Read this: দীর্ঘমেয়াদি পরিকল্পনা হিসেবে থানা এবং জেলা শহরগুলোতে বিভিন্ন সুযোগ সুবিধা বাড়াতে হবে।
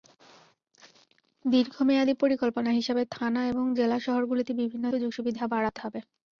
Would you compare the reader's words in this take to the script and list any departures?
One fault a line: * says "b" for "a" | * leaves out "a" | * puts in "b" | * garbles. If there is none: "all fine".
all fine